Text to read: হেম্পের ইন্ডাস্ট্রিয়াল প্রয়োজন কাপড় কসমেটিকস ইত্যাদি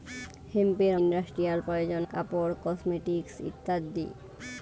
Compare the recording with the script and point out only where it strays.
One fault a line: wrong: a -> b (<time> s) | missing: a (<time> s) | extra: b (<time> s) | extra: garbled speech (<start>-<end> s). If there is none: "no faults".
no faults